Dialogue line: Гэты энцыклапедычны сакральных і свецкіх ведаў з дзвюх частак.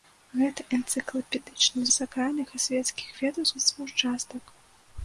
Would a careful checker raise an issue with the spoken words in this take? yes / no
no